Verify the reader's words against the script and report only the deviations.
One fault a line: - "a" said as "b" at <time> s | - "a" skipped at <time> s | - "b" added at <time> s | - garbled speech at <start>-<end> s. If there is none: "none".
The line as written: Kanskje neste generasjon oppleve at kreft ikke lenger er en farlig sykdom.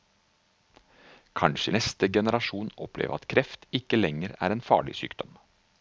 none